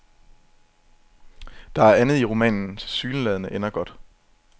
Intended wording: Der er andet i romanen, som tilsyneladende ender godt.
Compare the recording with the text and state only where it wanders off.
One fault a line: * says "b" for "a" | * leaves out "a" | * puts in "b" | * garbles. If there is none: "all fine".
* leaves out "som"